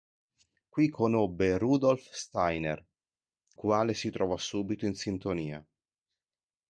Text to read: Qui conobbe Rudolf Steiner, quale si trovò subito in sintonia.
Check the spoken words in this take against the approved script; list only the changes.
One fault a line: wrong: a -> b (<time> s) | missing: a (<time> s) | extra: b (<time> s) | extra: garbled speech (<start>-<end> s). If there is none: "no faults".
no faults